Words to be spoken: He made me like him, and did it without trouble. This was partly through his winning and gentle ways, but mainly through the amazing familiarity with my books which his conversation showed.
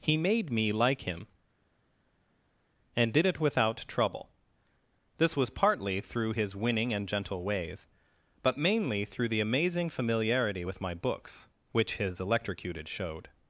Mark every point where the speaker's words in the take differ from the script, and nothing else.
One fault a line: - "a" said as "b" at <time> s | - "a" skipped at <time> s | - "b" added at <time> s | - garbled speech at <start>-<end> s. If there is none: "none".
- "conversation" said as "electrocuted" at 12.2 s